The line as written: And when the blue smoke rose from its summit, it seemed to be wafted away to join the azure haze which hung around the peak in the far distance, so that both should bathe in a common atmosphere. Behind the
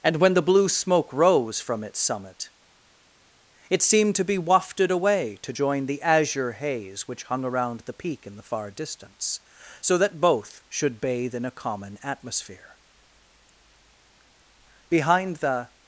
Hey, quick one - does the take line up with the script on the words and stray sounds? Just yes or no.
yes